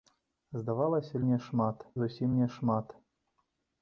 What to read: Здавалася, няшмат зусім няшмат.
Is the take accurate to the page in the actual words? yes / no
yes